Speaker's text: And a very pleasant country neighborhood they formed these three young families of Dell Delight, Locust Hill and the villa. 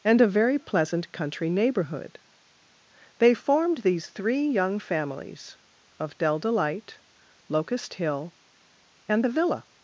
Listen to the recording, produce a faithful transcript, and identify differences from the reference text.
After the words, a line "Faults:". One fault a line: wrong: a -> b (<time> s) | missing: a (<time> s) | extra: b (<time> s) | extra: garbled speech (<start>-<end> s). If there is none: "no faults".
And a very pleasant country neighborhood they formed these three young families of Dell Delight, Locust Hill and the villa.
Faults:
no faults